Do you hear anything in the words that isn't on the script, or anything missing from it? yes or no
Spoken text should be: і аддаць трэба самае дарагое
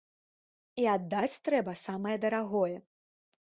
no